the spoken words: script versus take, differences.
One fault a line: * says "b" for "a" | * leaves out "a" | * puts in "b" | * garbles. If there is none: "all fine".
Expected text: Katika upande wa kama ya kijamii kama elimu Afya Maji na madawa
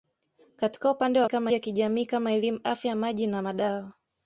all fine